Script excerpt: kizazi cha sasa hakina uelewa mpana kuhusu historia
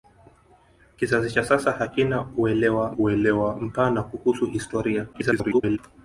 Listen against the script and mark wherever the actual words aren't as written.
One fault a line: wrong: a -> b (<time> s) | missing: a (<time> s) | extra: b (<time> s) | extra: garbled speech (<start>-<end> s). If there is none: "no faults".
extra: uelewa (3.0 s)
extra: garbled speech (5.1-5.8 s)